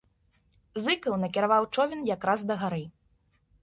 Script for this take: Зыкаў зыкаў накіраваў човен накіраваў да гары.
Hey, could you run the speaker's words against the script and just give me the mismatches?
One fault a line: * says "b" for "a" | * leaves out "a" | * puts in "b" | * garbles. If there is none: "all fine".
* leaves out "зыкаў"
* says "якраз" for "накіраваў"